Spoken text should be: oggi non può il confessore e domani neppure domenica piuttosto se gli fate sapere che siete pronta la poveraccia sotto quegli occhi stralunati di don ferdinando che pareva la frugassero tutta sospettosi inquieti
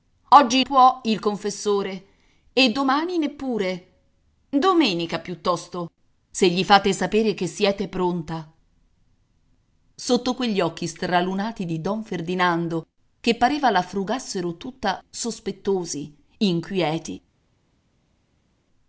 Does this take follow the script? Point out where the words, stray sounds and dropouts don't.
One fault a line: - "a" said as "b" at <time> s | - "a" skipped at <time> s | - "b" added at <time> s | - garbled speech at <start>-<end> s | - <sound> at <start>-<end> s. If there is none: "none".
- "non" skipped at 0.6 s
- "la poveraccia" skipped at 8.5 s